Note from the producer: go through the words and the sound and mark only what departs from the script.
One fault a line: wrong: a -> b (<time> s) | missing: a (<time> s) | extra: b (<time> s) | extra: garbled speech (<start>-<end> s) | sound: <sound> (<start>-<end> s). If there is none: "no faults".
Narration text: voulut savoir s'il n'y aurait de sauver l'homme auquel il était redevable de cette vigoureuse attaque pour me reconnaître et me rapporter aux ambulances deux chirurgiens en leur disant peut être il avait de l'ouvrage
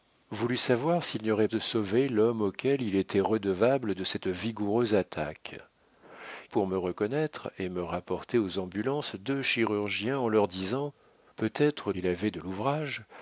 no faults